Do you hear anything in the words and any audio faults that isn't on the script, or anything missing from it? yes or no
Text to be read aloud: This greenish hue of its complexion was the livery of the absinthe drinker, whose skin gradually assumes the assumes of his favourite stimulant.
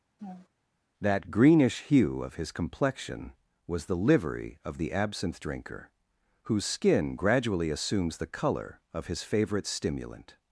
yes